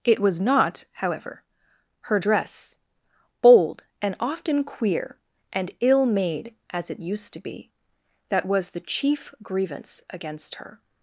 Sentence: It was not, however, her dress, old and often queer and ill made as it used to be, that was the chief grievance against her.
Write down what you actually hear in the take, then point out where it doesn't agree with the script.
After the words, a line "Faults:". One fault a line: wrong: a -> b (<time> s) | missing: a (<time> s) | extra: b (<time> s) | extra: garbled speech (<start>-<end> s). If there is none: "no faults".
It was not, however, her dress, bold and often queer and ill made as it used to be, that was the chief grievance against her.
Faults:
wrong: old -> bold (3.4 s)